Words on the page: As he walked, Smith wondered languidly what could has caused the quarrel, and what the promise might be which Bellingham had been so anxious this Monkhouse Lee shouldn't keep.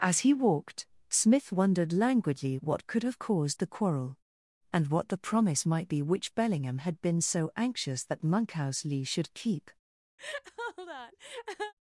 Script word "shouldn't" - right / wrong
wrong